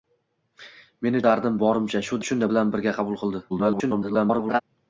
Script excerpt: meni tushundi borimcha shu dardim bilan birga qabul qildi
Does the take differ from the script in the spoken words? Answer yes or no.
yes